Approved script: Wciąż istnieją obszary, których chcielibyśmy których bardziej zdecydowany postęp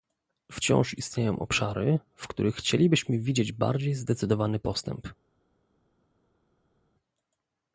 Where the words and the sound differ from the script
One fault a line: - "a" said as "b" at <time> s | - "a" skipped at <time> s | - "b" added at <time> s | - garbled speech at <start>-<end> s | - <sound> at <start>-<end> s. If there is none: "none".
- "w" added at 2.1 s
- "których" said as "widzieć" at 3.2 s